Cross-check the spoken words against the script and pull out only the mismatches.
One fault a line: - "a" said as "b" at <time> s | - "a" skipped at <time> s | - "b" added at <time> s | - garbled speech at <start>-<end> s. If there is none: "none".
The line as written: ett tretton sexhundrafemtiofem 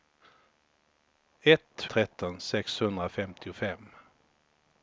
none